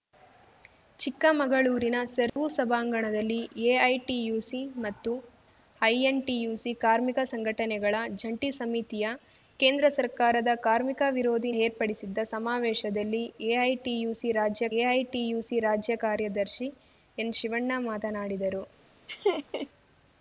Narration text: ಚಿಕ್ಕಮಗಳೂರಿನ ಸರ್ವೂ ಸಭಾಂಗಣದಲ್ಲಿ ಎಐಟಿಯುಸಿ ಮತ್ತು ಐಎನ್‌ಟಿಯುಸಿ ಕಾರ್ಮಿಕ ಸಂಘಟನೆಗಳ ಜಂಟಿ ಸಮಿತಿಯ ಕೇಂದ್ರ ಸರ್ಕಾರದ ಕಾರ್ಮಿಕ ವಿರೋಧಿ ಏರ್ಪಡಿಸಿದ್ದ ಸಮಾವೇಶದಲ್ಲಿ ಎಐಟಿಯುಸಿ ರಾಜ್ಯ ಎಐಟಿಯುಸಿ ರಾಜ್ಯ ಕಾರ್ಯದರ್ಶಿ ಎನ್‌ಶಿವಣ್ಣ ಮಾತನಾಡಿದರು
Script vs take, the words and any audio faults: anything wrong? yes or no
yes